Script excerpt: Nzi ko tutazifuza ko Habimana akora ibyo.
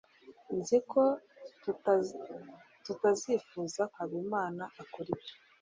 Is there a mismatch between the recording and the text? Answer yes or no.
yes